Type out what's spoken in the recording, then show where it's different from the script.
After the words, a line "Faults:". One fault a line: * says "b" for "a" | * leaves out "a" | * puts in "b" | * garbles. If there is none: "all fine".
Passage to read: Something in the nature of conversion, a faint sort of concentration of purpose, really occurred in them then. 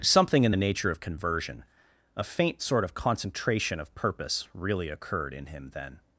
Something in the nature of conversion, a faint sort of concentration of purpose, really occurred in him then.
Faults:
* says "him" for "them"